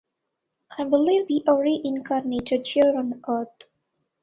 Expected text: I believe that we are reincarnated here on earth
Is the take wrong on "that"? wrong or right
wrong